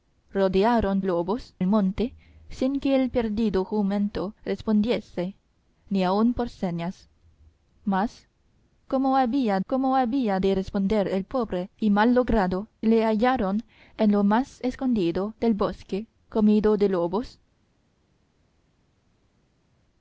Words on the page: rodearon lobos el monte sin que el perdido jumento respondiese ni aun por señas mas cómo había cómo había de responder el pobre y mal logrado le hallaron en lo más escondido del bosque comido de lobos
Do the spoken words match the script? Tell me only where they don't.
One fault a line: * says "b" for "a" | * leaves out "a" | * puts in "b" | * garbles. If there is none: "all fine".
all fine